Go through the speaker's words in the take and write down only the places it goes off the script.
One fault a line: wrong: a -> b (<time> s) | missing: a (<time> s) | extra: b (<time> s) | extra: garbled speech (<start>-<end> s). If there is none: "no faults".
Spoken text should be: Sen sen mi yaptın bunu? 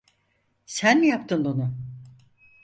missing: sen (1.0 s)